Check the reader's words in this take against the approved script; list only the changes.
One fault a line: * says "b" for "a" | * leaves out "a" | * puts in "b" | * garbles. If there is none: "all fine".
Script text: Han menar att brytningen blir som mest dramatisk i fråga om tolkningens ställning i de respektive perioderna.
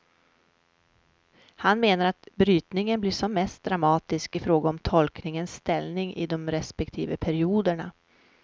all fine